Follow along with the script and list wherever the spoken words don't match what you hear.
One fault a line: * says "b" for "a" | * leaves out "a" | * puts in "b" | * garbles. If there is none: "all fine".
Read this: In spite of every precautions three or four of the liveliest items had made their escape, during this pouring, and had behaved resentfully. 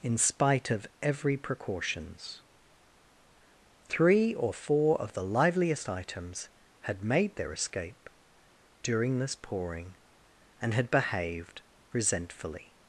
all fine